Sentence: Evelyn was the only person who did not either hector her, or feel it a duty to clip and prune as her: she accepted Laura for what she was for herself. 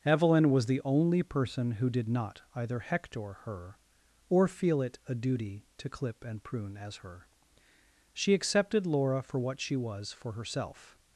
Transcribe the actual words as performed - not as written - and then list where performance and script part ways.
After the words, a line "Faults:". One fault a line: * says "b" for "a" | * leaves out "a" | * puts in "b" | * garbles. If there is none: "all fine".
Evelyn was the only person who did not either hector her, or feel it a duty to clip and prune as her: she accepted Laura for what she was for herself.
Faults:
all fine